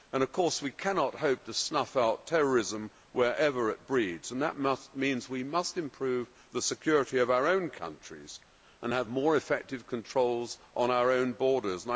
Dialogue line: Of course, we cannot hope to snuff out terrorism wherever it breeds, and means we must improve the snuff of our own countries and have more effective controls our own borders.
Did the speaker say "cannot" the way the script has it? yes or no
yes